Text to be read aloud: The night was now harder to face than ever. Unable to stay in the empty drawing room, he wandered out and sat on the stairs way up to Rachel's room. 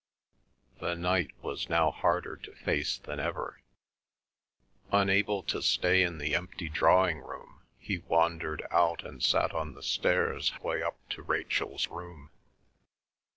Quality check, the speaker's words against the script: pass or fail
pass